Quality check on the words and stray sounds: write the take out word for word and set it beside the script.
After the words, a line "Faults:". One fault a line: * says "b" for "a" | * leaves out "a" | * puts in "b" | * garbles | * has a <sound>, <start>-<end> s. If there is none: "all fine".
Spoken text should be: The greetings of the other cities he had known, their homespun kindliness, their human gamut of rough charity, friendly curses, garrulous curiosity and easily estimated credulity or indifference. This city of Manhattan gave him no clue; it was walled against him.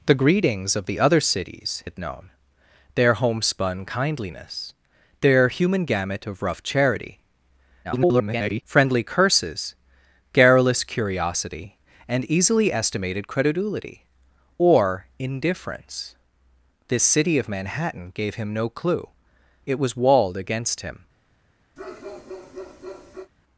The greetings of the other cities had known, their homespun kindliness, their human gamut of rough charity, [garbled] friendly curses, garrulous curiosity and easily estimated credulity or indifference. This city of Manhattan gave him no clue; it was walled against him.
Faults:
* leaves out "he"
* garbles
* has a bark, 21.8-23.3 s